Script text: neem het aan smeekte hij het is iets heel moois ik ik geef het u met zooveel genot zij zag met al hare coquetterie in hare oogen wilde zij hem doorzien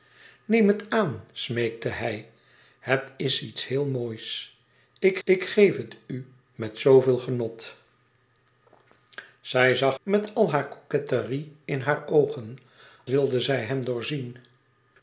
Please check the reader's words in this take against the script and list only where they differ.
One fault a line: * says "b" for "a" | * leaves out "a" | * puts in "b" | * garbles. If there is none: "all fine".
all fine